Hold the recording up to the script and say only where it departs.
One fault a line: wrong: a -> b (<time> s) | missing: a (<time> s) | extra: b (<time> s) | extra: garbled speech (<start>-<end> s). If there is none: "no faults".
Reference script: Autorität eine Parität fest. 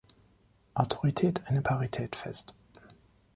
no faults